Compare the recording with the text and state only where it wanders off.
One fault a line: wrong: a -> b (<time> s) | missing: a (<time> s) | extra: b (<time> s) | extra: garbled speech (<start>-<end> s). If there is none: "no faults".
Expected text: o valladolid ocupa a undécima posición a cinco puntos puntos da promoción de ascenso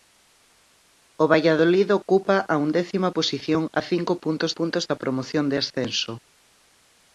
no faults